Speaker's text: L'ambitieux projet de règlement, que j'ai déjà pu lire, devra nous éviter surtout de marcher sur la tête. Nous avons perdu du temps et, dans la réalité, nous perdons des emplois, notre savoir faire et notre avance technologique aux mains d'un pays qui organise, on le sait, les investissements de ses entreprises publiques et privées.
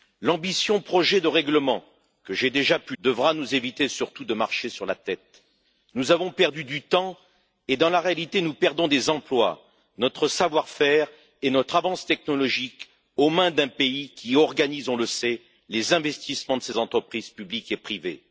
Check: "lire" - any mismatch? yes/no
yes